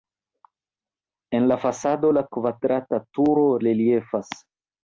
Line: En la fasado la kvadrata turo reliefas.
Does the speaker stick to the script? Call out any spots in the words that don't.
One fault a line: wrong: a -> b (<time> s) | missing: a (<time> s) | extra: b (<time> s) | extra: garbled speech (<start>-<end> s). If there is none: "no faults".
no faults